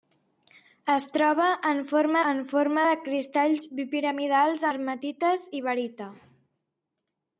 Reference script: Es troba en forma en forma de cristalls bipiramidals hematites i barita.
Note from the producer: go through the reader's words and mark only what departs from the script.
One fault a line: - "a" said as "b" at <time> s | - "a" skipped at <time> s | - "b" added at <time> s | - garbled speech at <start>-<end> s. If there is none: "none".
none